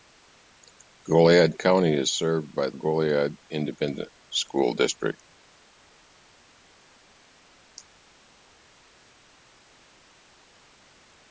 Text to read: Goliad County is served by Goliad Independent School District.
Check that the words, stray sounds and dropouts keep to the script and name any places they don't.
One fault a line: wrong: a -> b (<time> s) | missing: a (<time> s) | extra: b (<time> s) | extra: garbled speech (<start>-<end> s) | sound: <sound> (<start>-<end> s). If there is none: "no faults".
no faults